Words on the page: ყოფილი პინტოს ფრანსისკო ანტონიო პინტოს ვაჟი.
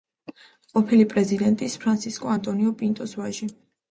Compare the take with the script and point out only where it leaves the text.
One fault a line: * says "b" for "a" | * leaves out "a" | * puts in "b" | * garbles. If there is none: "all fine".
* says "პრეზიდენტის" for "პინტოს"